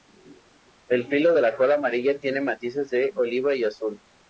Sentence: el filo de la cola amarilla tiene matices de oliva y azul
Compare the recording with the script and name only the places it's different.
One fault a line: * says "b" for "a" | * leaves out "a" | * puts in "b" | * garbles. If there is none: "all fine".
all fine